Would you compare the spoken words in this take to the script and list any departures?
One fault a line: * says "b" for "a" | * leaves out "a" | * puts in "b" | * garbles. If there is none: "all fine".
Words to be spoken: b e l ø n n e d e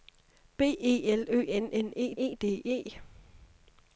* puts in "e"